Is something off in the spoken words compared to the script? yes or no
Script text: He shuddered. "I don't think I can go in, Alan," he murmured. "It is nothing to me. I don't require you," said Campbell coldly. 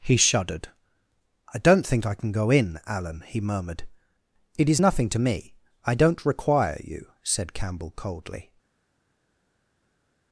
no